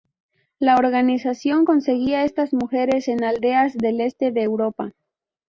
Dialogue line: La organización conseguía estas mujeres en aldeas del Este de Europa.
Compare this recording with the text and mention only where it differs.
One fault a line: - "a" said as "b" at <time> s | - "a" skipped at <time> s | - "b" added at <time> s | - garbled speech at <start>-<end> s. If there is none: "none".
none